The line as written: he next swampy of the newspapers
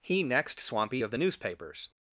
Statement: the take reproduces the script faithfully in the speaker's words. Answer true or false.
true